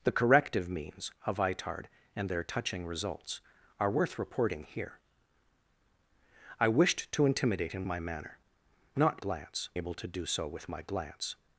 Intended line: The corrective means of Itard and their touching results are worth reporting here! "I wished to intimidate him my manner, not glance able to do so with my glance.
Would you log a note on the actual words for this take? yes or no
no